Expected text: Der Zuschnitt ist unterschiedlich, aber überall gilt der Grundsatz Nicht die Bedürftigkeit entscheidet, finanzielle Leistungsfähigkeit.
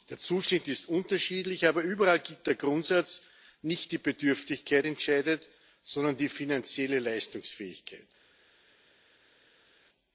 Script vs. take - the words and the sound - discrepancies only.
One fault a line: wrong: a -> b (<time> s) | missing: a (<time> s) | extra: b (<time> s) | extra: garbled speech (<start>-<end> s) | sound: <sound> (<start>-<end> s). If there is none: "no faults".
extra: sondern die (5.8 s)